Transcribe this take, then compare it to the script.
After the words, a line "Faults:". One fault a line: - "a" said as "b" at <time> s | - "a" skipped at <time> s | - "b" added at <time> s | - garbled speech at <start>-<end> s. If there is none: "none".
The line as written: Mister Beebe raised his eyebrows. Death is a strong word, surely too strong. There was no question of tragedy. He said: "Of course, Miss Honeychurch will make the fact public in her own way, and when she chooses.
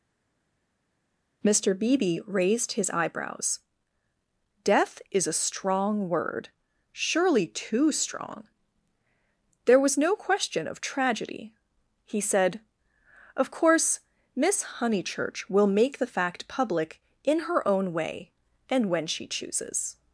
Mister Beebe raised his eyebrows. Death is a strong word, surely too strong. There was no question of tragedy. He said: "Of course, Miss Honeychurch will make the fact public in her own way, and when she chooses.
Faults:
none